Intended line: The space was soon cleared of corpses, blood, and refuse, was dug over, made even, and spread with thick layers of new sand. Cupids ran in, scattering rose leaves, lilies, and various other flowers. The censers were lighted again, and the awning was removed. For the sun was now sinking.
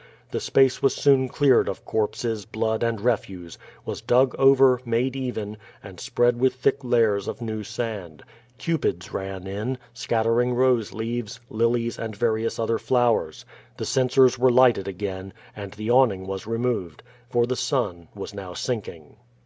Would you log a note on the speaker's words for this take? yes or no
no